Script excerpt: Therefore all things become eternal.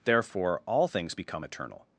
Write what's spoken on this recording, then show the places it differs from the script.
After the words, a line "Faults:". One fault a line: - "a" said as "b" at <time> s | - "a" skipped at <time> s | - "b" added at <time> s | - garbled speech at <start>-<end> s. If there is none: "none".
Therefore all things become eternal.
Faults:
none